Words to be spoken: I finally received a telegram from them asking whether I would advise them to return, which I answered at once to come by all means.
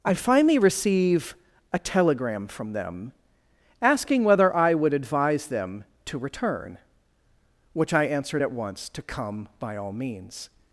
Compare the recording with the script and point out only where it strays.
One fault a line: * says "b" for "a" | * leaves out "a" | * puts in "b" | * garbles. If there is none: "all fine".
* says "receive" for "received"